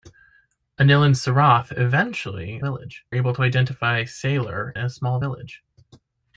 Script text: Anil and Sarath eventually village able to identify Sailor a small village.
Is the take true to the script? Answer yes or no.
yes